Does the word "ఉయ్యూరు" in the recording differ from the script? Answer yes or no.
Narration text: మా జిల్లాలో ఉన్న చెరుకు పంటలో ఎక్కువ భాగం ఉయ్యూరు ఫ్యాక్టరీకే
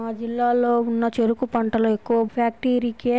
yes